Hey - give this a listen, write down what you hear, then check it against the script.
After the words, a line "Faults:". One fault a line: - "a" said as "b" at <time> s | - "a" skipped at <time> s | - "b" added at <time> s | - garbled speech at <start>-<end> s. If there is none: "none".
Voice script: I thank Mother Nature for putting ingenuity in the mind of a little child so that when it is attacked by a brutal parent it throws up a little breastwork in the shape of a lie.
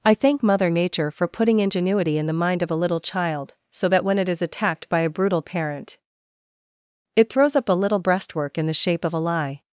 I thank Mother Nature for putting ingenuity in the mind of a little child so that when it is attacked by a brutal parent it throws up a little breastwork in the shape of a lie.
Faults:
none